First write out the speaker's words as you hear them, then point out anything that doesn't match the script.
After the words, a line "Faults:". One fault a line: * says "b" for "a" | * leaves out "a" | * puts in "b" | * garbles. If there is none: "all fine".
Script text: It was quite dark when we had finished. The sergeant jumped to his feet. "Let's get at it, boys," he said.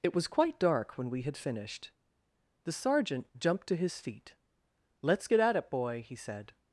It was quite dark when we had finished. The sergeant jumped to his feet. "Let's get at it, boy," he said.
Faults:
* says "boy" for "boys"